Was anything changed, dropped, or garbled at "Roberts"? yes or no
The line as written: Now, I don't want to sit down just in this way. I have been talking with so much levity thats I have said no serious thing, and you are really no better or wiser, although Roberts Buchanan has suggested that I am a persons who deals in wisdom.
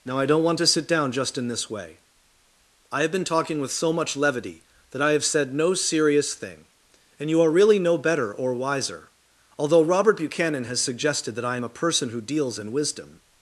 yes